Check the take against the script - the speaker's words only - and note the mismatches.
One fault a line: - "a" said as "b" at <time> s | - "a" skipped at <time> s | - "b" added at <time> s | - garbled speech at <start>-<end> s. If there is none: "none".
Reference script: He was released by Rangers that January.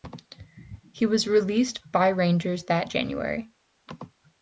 none